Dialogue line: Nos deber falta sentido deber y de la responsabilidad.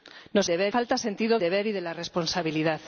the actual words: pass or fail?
pass